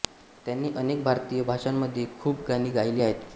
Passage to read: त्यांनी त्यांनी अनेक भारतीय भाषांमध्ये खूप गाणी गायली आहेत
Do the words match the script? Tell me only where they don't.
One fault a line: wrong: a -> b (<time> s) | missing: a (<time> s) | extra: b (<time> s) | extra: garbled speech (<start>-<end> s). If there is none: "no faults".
missing: त्यांनी (0.7 s)